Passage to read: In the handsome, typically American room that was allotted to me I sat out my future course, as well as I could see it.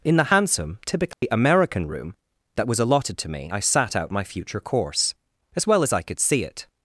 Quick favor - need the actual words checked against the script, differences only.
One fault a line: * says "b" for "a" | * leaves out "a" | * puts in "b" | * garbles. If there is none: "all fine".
all fine